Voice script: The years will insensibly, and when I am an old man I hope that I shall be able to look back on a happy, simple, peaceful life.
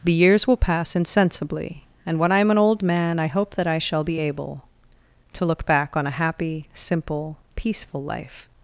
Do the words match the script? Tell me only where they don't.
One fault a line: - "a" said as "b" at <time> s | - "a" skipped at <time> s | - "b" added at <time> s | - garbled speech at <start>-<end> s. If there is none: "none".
- "pass" added at 0.6 s